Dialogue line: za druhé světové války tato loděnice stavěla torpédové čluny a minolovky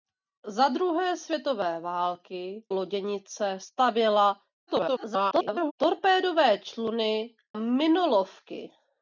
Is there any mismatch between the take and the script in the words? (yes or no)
yes